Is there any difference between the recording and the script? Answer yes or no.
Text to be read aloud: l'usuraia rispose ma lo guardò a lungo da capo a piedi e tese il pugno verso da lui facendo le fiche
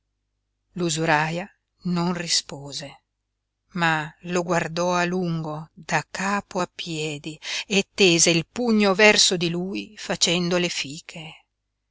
yes